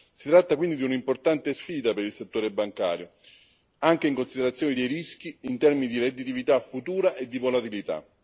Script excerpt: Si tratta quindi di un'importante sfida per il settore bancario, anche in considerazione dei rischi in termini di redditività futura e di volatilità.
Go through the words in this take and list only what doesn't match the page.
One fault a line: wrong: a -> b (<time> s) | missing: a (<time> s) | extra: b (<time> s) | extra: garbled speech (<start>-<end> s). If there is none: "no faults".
no faults